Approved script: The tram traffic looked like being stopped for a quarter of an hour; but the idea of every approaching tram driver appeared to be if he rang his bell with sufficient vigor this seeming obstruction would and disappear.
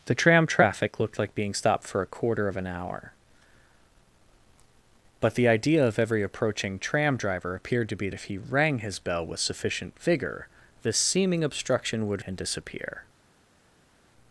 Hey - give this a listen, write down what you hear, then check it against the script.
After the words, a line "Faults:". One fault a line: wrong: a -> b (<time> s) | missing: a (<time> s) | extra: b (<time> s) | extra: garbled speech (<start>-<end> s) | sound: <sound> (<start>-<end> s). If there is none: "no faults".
The tram traffic looked like being stopped for a quarter of an hour; but the idea of every approaching tram driver appeared to be if he rang his bell with sufficient vigor this seeming obstruction would and disappear.
Faults:
no faults